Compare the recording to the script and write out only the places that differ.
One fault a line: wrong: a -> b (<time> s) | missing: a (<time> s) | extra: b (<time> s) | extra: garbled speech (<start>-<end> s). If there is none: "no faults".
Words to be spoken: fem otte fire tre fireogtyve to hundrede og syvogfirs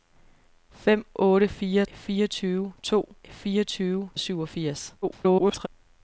missing: tre (1.9 s)
wrong: hundrede -> fireogtyve (3.3 s)
extra: garbled speech (5.0-5.7 s)